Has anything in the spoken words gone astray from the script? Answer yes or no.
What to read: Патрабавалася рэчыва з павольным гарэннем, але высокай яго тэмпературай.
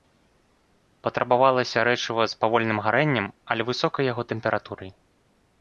no